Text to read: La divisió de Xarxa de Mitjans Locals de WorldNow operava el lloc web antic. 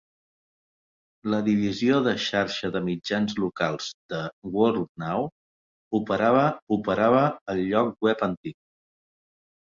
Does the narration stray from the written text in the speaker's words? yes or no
yes